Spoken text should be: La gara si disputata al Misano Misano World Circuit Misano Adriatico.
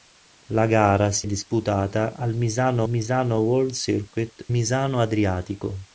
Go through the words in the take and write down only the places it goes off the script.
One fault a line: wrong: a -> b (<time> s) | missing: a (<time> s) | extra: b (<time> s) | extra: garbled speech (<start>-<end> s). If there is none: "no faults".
no faults